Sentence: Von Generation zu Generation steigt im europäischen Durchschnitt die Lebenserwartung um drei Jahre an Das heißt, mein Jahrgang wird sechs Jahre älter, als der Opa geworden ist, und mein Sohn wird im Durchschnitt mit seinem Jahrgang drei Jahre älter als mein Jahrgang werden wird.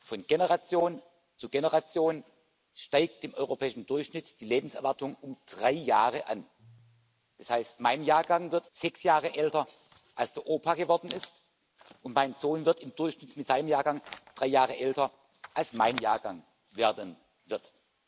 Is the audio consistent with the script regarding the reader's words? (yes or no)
yes